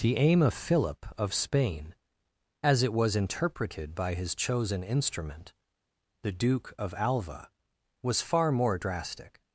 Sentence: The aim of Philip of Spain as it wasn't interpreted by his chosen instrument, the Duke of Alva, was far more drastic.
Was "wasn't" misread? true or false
true